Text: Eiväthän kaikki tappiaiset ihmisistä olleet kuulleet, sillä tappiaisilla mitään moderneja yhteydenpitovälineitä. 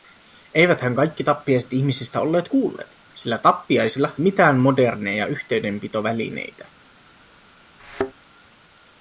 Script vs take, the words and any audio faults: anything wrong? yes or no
yes